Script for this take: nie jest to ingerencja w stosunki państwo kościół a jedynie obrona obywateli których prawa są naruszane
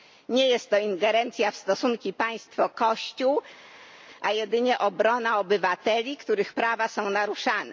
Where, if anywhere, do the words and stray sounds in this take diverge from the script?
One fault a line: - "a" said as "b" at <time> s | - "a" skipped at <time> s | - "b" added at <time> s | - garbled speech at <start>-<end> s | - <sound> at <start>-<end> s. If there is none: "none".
none